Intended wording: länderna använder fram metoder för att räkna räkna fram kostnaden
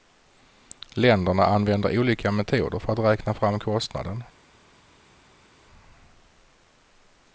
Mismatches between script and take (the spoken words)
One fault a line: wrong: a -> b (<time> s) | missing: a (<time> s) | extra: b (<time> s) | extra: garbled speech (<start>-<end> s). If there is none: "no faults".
wrong: fram -> olika (2.0 s)
missing: räkna (3.3 s)